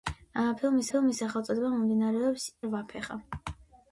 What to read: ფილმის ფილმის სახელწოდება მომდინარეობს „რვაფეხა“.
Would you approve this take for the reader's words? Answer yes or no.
yes